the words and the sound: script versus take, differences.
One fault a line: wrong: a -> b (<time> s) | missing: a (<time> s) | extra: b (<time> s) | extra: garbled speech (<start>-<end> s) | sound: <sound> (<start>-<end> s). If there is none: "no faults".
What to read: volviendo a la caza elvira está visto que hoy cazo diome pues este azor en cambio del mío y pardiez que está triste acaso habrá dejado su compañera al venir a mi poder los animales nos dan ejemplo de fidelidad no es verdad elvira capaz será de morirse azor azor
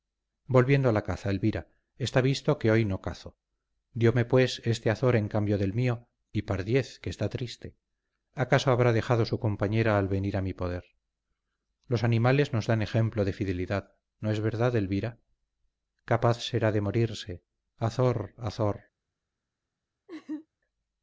extra: no (2.9 s)
sound: laugh (20.1-20.5 s)